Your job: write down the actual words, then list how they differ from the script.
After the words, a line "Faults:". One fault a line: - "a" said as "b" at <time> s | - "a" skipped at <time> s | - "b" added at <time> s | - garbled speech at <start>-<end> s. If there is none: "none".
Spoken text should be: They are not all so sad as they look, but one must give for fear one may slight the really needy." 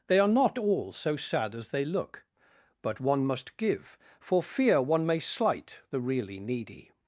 They are not all so sad as they look, but one must give for fear one may slight the really needy."
Faults:
none